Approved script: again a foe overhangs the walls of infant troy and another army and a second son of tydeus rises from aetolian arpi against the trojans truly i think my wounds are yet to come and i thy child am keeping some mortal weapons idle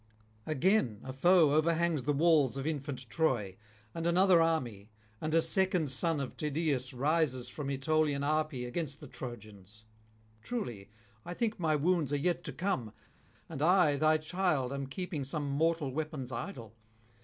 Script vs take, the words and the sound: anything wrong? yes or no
no